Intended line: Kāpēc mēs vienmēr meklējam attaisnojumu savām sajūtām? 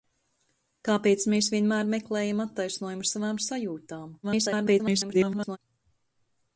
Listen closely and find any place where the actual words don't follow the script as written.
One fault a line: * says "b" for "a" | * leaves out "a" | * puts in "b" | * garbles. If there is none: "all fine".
* garbles